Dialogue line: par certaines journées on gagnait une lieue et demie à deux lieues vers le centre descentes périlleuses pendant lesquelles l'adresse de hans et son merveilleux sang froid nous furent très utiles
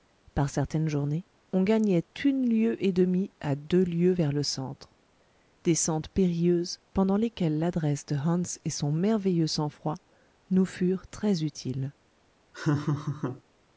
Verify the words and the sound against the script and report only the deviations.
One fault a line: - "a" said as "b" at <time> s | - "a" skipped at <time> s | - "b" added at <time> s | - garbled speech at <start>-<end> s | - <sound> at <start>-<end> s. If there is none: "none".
- laugh at 12.5-13.4 s